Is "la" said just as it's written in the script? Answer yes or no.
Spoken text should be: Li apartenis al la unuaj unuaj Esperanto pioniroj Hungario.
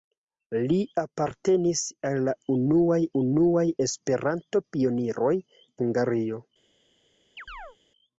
yes